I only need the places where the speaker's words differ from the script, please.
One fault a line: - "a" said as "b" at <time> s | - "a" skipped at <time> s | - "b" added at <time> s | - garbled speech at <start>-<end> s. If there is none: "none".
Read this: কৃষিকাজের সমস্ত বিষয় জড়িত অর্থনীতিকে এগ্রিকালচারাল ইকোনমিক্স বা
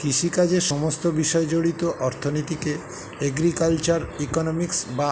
none